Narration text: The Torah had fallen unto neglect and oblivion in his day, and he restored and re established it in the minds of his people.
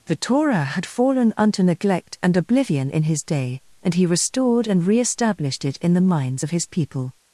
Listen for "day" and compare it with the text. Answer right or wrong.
right